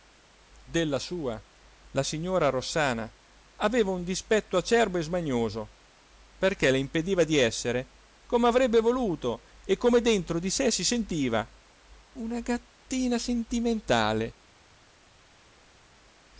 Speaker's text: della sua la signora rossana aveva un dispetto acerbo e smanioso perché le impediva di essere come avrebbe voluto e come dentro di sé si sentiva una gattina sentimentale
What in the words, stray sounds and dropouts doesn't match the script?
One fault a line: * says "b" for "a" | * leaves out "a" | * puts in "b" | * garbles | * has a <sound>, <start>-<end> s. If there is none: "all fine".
all fine